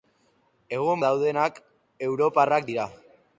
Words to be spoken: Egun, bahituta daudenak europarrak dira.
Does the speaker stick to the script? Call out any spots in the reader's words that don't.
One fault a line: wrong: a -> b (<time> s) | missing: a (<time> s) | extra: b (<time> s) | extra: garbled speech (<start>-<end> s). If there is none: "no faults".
missing: bahituta (1.0 s)